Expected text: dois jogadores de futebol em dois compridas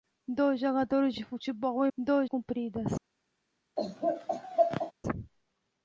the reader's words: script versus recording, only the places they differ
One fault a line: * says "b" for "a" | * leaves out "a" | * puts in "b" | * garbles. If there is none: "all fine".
all fine